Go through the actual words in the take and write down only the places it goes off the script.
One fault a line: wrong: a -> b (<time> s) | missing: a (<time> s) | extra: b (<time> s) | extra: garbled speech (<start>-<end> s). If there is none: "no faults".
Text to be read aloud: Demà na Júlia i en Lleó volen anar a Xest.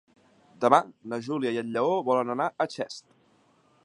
no faults